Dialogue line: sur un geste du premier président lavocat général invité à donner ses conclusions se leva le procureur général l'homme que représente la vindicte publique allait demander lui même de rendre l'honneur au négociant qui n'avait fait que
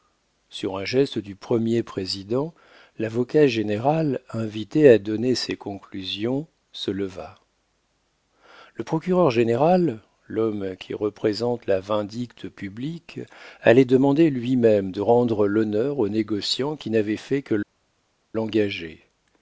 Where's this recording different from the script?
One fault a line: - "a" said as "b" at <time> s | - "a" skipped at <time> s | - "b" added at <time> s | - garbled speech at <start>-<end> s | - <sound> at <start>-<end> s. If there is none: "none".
- "que" said as "qui" at 10.8 s